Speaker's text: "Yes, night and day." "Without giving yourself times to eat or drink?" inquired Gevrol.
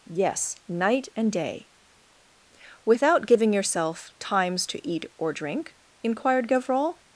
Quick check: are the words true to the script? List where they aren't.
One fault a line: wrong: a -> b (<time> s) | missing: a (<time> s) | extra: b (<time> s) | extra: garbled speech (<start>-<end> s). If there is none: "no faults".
no faults